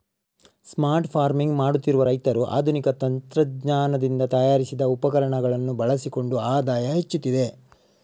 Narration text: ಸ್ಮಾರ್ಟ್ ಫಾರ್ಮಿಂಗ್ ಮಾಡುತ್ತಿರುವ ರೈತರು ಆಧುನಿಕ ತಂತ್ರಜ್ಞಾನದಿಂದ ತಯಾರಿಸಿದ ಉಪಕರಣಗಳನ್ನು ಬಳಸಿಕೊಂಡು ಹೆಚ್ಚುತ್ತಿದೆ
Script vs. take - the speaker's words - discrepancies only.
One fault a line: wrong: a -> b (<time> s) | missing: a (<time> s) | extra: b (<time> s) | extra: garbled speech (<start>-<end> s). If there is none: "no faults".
extra: ಆದಾಯ (6.4 s)